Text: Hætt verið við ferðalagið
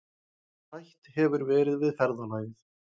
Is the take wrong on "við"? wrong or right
right